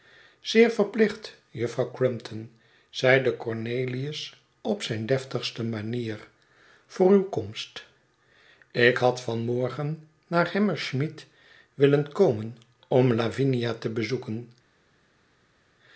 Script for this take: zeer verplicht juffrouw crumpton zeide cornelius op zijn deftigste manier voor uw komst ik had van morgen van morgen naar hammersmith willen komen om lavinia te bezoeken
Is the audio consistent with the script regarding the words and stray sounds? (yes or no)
no